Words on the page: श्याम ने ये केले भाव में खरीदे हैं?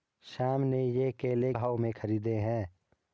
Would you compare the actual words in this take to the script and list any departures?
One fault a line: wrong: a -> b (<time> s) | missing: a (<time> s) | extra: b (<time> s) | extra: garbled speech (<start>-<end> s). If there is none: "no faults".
no faults